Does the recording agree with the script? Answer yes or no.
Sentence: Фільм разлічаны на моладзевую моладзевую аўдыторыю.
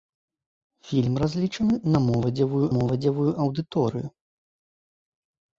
yes